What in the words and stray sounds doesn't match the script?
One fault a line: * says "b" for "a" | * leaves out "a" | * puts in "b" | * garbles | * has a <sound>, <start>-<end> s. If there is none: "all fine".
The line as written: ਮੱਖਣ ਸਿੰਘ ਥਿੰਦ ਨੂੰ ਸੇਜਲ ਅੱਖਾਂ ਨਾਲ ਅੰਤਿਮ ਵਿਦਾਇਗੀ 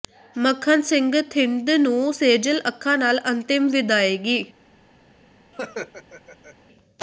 * has a laugh, 5.5-6.6 s